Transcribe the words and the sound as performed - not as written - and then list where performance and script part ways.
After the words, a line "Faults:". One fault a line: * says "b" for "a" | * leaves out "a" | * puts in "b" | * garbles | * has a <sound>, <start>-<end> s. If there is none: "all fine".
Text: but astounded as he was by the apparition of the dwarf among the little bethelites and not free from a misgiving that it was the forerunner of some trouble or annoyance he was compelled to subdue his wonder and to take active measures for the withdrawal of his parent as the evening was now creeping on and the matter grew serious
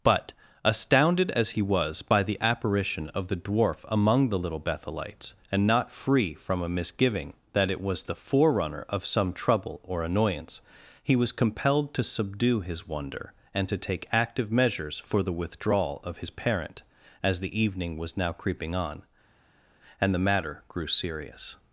but astounded as he was by the apparition of the dwarf among the little bethelites and not free from a misgiving that it was the forerunner of some trouble or annoyance he was compelled to subdue his wonder and to take active measures for the withdrawal of his parent as the evening was now creeping on and the matter grew serious
Faults:
all fine